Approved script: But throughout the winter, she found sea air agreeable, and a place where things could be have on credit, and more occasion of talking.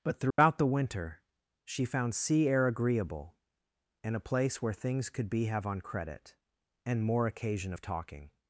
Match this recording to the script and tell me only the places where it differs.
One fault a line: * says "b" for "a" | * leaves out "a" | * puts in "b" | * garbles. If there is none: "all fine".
all fine